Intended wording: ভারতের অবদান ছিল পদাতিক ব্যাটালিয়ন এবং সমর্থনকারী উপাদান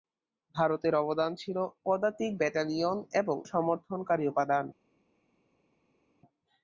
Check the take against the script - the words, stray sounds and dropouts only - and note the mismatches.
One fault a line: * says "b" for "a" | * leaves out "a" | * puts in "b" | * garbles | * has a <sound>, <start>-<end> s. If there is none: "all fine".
all fine